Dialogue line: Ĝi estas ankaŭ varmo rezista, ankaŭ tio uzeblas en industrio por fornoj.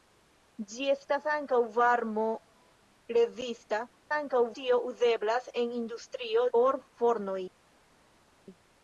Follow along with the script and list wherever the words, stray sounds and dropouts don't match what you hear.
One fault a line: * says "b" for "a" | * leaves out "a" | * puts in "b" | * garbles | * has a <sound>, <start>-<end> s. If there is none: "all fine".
all fine